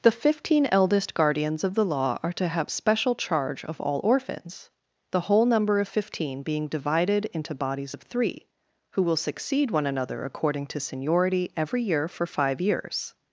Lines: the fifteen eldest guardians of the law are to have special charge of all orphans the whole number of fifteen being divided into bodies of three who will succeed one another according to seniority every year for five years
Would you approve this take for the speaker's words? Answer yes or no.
yes